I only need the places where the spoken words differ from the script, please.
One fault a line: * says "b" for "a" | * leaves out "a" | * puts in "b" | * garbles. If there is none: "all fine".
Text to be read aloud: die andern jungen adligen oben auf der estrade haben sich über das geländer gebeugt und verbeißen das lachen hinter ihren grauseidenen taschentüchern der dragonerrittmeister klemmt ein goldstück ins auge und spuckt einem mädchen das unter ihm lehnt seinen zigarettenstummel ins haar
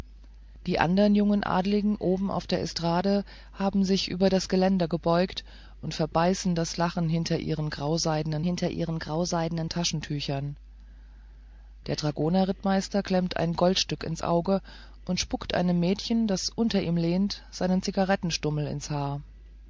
* puts in "hinter ihren grauseidenen"